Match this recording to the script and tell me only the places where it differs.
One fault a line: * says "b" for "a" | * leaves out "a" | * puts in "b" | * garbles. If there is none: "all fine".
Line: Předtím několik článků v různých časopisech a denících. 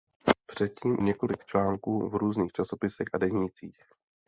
all fine